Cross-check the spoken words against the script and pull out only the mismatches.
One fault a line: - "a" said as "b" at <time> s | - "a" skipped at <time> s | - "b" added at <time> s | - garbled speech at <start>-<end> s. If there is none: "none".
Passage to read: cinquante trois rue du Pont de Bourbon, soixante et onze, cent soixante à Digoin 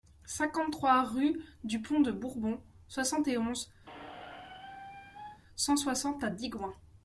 none